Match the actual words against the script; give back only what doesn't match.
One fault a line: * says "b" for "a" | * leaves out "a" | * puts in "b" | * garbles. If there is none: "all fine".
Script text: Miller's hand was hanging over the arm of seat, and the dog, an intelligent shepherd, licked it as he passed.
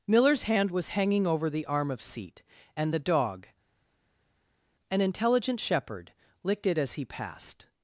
all fine